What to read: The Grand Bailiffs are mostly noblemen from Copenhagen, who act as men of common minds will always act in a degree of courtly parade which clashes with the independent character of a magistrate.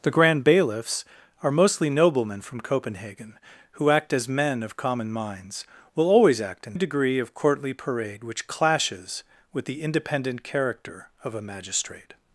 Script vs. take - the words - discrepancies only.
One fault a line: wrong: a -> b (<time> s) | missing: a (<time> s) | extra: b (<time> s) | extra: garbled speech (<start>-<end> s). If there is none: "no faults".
no faults